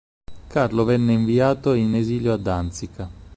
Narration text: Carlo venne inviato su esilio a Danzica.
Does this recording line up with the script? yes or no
no